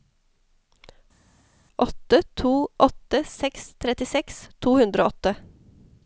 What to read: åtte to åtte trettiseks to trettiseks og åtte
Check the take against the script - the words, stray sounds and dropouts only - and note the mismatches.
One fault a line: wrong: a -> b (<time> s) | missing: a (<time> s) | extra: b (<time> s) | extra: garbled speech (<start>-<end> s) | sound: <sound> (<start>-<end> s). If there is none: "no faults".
extra: seks (3.3 s)
wrong: trettiseks -> hundre (4.8 s)